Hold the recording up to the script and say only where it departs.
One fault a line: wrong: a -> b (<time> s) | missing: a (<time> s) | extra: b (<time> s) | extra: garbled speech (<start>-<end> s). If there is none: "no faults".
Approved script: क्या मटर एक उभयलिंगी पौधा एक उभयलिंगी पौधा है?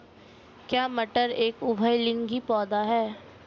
missing: एक उभयलिंगी पौधा (2.8 s)